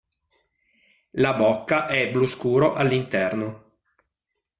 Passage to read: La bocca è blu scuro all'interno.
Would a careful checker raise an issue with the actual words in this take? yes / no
no